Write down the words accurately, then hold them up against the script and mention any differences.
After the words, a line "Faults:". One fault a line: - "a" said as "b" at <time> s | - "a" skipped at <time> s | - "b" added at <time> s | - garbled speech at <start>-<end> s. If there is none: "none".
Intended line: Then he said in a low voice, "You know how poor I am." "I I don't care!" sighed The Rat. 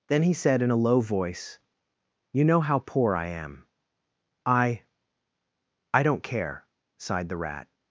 Then he said in a low voice, "You know how poor I am." "I I don't care!" sighed The Rat.
Faults:
none